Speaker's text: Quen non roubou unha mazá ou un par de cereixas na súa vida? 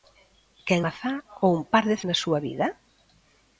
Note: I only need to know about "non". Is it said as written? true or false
false